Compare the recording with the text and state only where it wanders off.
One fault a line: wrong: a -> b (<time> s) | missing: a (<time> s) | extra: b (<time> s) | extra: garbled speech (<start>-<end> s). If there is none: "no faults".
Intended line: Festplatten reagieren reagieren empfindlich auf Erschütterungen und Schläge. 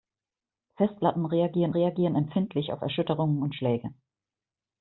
no faults